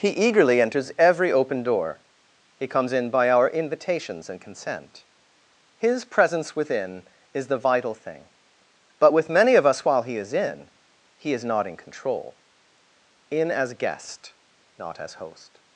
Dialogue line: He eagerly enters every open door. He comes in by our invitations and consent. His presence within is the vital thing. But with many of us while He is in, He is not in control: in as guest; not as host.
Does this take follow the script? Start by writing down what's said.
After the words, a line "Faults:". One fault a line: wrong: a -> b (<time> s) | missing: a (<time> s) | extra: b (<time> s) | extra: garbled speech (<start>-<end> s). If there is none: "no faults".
He eagerly enters every open door. He comes in by our invitations and consent. His presence within is the vital thing. But with many of us while He is in, He is not in control: in as guest; not as host.
Faults:
no faults